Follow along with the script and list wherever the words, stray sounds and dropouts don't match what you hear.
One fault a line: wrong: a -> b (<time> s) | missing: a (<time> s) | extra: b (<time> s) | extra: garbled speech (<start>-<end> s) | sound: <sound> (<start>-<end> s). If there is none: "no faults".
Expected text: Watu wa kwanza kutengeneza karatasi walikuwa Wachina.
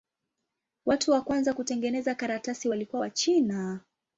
no faults